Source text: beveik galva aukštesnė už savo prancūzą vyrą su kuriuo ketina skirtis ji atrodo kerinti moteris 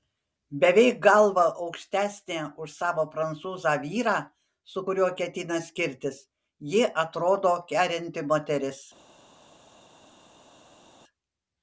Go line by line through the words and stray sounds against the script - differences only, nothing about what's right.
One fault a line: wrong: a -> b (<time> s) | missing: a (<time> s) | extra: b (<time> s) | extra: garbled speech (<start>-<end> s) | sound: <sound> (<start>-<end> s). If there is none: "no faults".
no faults